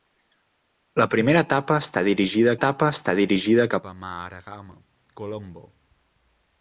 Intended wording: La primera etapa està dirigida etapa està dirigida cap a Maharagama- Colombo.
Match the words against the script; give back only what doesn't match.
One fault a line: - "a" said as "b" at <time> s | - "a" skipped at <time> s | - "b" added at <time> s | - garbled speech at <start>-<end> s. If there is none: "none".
none